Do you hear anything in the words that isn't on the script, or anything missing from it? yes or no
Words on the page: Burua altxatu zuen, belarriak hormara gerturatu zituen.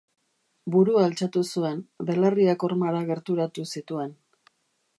no